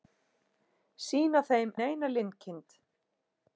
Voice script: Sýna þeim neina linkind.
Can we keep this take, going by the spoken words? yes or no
yes